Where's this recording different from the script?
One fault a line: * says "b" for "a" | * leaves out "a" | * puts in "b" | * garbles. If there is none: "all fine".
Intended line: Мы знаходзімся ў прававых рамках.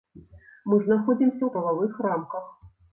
all fine